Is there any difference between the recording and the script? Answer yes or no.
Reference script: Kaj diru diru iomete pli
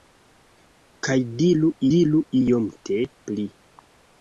no